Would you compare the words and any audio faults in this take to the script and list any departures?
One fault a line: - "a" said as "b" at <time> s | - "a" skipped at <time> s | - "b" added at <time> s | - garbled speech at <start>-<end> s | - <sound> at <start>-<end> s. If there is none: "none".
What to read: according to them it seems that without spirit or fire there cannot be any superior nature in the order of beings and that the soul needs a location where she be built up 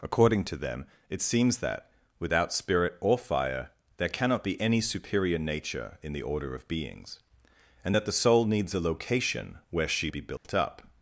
- dropout at 10.4-10.4 s